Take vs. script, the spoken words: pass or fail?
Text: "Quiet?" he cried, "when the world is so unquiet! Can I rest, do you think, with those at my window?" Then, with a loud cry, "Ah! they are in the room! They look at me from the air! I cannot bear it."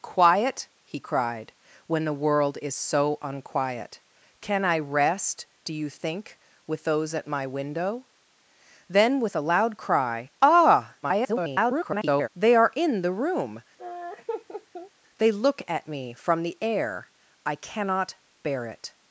fail